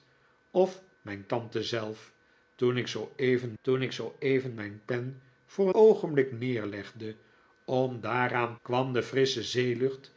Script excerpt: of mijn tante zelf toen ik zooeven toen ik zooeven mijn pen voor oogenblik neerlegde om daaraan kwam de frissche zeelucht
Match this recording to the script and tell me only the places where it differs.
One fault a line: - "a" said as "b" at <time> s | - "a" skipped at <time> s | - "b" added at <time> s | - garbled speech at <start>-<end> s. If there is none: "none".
none